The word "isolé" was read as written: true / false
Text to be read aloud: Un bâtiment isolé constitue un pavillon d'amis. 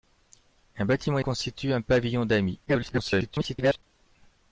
false